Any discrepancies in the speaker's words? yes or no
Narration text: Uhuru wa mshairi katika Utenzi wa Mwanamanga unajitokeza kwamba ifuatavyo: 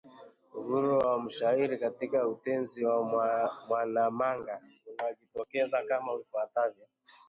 yes